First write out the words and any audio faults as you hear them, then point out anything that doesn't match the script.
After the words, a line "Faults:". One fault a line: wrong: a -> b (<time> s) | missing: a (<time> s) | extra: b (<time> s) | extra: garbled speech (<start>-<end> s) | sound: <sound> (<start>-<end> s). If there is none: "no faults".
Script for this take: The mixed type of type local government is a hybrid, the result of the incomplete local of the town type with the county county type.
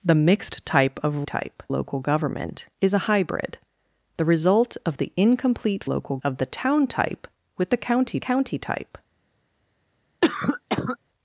The mixed type of type local government is a hybrid, the result of the incomplete local of the town type with the county county type.
Faults:
sound: cough (10.2-11.0 s)